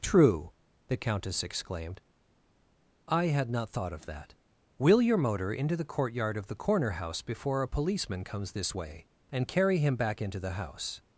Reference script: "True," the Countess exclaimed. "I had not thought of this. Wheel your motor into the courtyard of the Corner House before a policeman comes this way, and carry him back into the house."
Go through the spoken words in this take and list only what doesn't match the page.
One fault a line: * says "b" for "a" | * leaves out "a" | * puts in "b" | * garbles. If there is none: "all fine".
* says "that" for "this"